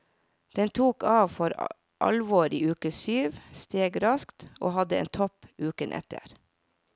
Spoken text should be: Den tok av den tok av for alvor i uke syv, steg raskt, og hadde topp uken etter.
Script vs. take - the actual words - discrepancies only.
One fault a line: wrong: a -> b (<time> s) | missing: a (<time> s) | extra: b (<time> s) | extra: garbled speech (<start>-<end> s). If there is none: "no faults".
missing: den tok av (1.3 s)
extra: en (5.0 s)